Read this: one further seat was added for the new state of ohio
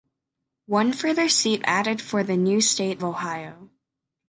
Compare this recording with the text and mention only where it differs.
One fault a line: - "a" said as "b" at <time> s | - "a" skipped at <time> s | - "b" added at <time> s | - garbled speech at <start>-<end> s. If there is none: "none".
- "was" skipped at 1.7 s
- "of" skipped at 3.0 s